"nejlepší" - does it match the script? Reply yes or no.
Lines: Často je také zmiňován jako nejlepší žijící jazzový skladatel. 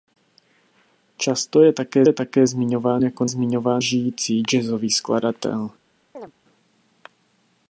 no